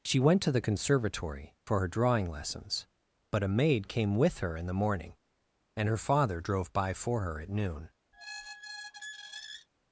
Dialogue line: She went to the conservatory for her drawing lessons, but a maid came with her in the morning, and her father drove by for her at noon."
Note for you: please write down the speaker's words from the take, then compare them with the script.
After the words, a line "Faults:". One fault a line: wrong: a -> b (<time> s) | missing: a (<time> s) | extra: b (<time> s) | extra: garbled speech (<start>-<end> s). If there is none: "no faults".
She went to the conservatory for her drawing lessons, but a maid came with her in the morning, and her father drove by for her at noon."
Faults:
no faults